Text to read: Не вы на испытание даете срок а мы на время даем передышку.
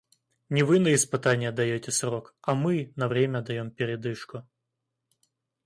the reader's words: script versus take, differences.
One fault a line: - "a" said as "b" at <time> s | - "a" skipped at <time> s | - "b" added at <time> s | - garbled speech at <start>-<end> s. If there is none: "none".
none